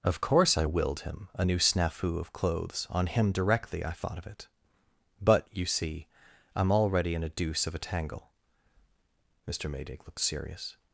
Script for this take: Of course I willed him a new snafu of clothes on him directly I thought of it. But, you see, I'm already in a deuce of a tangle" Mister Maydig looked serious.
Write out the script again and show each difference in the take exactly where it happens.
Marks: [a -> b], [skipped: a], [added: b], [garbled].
Of course I willed him a new snafu of clothes on him directly I thought of it. But, you see, I'm already in a deuce of a tangle" Mister Maydig looked serious.